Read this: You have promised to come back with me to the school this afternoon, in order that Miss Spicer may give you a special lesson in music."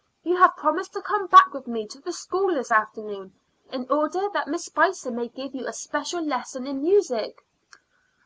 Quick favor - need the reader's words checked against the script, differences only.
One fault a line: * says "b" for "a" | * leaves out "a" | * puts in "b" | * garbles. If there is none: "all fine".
all fine